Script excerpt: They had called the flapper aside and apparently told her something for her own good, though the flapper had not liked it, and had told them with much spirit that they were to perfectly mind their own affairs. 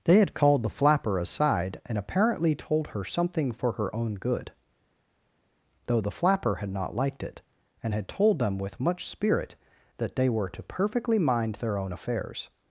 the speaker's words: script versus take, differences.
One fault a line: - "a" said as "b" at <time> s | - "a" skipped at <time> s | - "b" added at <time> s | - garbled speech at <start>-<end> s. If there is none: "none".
none